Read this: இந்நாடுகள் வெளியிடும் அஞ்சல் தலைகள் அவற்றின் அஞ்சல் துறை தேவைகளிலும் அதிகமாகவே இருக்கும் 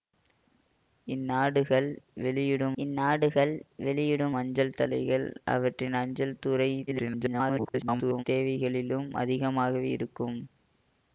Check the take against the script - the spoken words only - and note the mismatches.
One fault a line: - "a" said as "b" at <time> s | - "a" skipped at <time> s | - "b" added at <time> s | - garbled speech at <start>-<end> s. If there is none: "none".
- "இந்நாடுகள் வெளியிடும்" added at 2.8 s
- garbled speech at 6.9-8.2 s